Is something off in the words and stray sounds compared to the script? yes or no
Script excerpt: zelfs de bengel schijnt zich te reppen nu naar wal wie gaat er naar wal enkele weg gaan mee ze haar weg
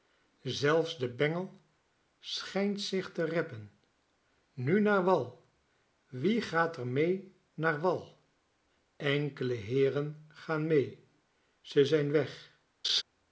yes